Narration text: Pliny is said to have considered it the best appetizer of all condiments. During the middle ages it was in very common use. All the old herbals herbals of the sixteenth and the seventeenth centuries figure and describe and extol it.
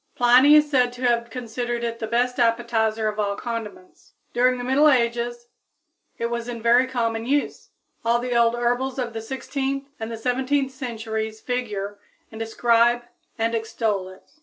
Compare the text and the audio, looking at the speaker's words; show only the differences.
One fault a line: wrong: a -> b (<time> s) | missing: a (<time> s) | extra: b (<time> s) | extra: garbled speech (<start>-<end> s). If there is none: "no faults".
missing: herbals (9.0 s)